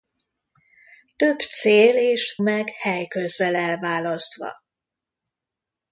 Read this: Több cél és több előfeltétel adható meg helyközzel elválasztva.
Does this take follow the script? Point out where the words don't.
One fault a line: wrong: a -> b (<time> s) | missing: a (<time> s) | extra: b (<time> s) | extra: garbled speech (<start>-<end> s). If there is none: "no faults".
missing: több előfeltétel adható (2.4 s)